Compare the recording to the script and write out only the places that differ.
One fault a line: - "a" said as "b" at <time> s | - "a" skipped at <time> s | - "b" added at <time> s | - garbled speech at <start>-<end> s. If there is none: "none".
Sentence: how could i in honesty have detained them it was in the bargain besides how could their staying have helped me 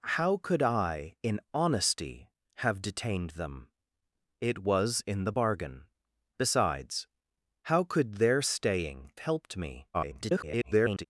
- "have" skipped at 9.1 s
- garbled speech at 9.9-11.1 s